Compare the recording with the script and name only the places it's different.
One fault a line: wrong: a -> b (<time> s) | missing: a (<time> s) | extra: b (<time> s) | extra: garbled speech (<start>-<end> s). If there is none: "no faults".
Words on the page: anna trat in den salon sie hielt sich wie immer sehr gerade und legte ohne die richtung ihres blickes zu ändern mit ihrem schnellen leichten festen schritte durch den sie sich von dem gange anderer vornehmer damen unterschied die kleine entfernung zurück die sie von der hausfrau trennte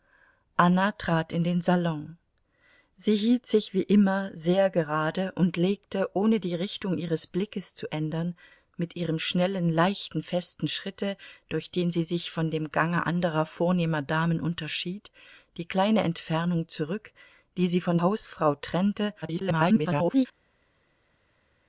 missing: der (18.0 s)
extra: garbled speech (19.2-20.3 s)